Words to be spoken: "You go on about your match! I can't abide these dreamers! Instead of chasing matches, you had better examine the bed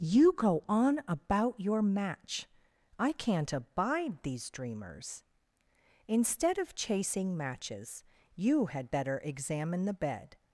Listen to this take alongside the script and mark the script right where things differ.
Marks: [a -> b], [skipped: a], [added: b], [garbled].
"You go on about your match! I can't abide these dreamers! Instead of chasing matches, you had better examine the bed